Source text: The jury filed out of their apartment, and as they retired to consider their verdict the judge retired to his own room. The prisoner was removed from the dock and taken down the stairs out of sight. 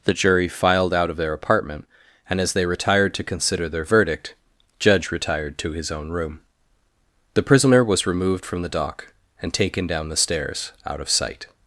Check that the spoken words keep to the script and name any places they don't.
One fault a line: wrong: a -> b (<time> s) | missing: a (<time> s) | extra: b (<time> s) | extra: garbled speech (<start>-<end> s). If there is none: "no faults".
missing: the (4.3 s)